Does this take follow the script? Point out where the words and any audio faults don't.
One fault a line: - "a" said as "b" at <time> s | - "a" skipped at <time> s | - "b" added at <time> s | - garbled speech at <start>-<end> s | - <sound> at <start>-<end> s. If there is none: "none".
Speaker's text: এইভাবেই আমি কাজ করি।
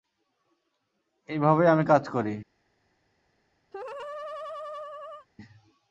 - laugh at 3.7-5.3 s